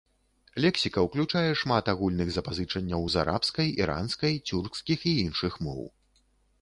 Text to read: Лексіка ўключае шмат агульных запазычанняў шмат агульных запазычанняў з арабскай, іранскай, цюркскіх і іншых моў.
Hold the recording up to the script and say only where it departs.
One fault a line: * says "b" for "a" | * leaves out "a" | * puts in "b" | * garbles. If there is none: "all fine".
* leaves out "шмат агульных запазычанняў"